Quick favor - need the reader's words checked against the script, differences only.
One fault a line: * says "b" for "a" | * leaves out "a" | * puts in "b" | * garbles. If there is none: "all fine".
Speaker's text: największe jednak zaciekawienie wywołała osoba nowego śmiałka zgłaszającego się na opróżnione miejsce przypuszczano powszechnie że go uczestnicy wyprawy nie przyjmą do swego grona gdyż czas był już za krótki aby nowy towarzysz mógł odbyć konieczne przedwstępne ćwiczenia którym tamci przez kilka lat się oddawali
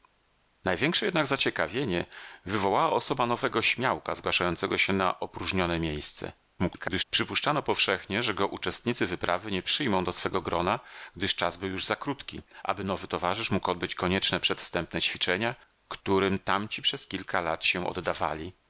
* garbles